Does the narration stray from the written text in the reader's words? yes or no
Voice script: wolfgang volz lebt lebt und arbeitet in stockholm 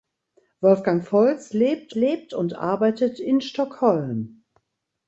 no